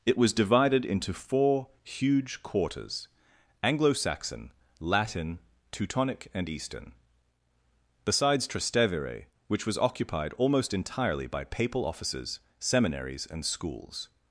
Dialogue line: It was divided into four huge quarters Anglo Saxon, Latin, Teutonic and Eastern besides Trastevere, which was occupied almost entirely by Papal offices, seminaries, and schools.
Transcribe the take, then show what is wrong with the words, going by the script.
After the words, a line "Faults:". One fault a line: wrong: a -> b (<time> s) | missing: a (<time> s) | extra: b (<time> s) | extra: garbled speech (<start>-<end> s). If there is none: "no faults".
It was divided into four huge quarters Anglo Saxon, Latin, Teutonic and Eastern besides Trastevere, which was occupied almost entirely by Papal offices, seminaries, and schools.
Faults:
no faults